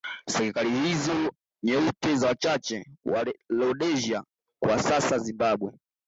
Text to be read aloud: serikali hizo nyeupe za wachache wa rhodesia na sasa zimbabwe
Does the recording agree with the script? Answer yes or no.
no